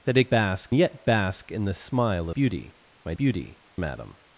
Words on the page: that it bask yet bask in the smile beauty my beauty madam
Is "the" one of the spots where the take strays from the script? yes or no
no